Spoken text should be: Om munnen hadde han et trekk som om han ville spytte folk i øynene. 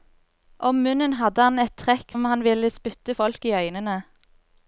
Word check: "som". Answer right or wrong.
wrong